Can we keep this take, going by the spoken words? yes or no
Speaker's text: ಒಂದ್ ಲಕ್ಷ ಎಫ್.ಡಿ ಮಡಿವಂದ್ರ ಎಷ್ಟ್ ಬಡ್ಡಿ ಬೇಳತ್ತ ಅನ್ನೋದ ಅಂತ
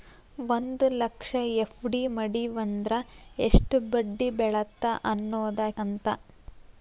yes